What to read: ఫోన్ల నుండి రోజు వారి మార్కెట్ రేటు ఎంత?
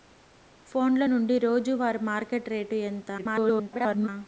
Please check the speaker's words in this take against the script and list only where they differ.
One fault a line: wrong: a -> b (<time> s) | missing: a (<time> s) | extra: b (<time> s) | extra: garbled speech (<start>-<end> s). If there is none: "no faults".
extra: garbled speech (3.2-4.1 s)